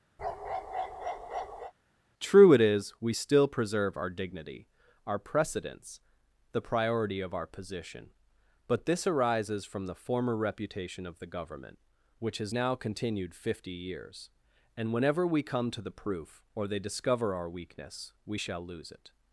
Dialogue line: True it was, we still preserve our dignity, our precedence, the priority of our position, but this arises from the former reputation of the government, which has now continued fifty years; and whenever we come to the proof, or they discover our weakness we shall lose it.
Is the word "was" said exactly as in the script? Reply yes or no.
no